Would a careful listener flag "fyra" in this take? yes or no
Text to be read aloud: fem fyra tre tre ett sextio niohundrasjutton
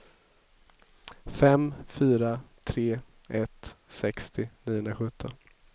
no